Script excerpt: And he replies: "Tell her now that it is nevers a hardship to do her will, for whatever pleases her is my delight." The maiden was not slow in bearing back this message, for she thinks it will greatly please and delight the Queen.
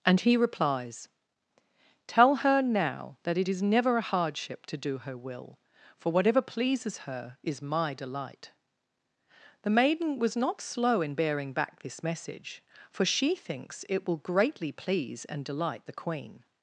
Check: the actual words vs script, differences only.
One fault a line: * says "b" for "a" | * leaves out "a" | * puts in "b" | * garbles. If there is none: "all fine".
* says "never" for "nevers"